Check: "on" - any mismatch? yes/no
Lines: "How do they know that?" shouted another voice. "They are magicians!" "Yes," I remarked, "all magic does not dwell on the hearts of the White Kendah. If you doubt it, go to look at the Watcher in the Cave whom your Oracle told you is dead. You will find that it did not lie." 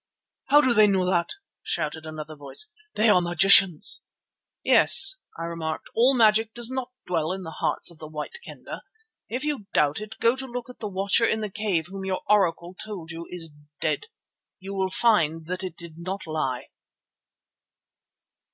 yes